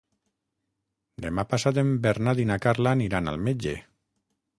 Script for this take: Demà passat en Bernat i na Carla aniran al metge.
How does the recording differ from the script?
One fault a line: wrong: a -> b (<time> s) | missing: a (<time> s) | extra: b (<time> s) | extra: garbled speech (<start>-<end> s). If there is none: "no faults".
no faults